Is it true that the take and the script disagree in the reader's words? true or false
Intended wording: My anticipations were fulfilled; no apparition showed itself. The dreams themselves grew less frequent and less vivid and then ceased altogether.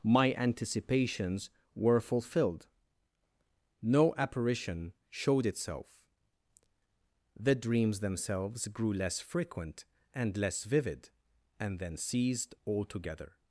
false